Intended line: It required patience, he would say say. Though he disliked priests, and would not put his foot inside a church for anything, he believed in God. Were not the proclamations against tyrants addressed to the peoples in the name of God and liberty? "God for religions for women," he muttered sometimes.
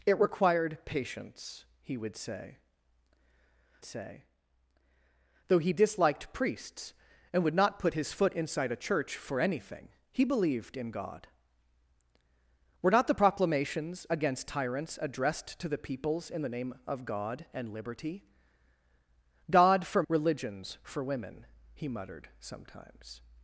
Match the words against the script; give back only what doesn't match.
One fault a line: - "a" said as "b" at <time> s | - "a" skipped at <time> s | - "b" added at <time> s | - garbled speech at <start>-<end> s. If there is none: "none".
none